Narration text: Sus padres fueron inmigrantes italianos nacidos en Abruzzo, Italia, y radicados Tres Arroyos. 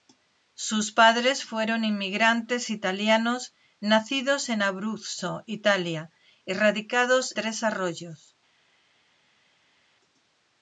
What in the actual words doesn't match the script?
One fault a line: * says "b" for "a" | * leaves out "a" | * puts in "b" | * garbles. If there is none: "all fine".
all fine